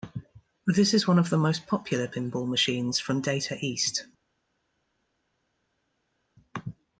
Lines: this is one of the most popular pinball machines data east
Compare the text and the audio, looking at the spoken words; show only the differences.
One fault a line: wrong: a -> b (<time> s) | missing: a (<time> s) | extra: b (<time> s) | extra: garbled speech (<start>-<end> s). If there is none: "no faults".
extra: from (3.0 s)